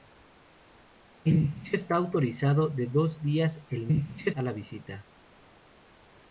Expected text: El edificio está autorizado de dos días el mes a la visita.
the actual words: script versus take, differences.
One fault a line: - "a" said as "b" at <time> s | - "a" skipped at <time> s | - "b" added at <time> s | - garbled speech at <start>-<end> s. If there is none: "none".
- "mes" said as "edificio" at 3.9 s